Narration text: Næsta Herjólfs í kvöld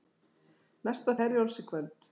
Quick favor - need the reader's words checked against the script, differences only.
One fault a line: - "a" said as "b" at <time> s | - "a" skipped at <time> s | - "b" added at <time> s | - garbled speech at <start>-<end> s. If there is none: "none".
none